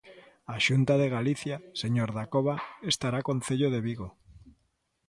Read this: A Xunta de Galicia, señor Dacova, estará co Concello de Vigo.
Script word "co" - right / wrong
wrong